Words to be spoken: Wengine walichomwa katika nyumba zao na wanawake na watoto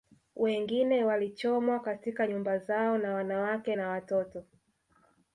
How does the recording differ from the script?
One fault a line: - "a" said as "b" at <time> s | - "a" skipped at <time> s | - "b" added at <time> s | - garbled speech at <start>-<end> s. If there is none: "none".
none